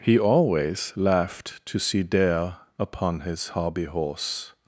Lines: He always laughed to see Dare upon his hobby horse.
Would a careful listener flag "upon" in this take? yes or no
no